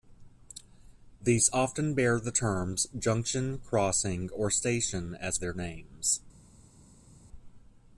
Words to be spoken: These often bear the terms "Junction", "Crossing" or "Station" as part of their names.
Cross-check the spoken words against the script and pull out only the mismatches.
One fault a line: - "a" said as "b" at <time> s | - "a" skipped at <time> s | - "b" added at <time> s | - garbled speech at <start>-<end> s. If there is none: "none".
- "part of" skipped at 5.4 s